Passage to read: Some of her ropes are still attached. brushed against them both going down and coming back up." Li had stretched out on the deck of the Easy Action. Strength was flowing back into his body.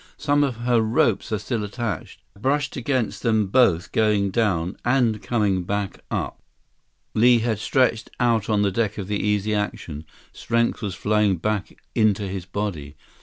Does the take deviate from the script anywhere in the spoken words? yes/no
no